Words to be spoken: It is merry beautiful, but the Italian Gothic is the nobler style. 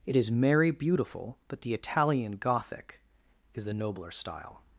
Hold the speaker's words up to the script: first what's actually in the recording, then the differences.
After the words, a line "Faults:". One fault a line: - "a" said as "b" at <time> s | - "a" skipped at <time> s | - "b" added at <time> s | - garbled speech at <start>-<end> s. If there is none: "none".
It is merry beautiful, but the Italian Gothic is the nobler style.
Faults:
none